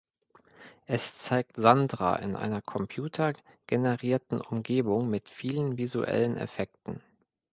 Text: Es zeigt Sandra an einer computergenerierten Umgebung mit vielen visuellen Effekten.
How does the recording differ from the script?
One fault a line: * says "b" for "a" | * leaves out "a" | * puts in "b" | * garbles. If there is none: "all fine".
* says "in" for "an"